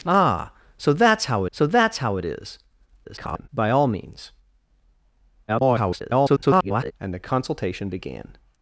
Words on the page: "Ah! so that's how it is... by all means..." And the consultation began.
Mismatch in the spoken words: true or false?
true